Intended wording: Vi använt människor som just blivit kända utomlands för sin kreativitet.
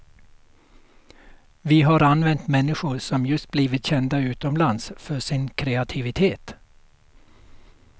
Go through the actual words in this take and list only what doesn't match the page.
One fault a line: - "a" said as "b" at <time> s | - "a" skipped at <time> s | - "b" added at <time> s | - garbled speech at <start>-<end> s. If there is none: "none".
- "har" added at 1.8 s